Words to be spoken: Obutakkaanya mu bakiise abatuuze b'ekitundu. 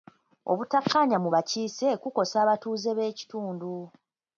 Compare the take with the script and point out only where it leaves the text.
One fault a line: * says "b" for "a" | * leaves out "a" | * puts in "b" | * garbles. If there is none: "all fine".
* puts in "kukosa"